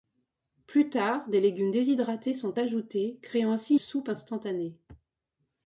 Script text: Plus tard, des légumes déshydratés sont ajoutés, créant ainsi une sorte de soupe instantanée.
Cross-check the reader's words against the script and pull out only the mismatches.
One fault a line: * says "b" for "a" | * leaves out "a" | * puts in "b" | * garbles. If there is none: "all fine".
* leaves out "une sorte de"